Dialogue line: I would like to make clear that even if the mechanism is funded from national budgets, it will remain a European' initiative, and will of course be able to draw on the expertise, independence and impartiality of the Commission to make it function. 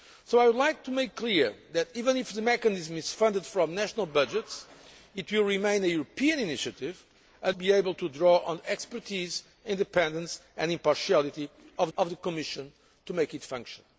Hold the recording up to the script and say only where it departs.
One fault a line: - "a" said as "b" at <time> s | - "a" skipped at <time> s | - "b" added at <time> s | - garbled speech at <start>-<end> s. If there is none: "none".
- "will of course" skipped at 7.5 s
- "of" added at 12.0 s